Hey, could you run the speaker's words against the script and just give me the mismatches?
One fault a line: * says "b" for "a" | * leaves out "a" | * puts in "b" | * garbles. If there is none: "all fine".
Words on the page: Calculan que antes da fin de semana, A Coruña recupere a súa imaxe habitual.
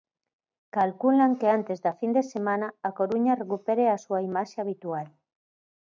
all fine